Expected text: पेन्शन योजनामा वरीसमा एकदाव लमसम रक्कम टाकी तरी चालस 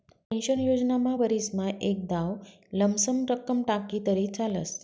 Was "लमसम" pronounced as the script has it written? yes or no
yes